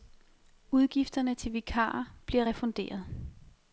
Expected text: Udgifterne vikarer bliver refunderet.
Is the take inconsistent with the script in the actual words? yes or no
yes